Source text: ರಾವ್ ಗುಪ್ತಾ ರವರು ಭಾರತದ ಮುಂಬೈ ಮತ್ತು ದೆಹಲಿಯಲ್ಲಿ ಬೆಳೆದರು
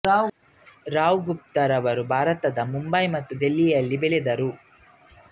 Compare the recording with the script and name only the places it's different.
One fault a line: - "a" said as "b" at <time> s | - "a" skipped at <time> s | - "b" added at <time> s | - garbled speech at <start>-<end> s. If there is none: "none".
none